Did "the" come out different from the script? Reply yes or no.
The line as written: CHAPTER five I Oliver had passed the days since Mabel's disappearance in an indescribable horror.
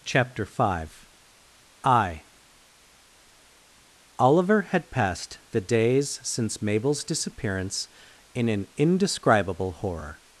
no